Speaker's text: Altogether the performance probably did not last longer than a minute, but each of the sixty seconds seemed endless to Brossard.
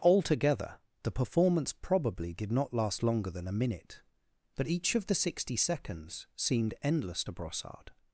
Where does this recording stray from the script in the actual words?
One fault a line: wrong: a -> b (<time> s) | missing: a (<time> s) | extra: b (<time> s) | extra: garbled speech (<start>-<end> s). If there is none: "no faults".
no faults